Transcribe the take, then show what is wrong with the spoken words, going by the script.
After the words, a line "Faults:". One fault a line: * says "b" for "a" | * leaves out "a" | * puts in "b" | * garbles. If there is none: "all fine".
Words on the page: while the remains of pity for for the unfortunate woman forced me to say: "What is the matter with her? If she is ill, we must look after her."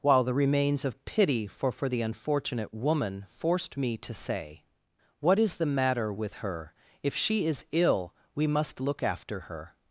while the remains of pity for for the unfortunate woman forced me to say: "What is the matter with her? If she is ill, we must look after her."
Faults:
all fine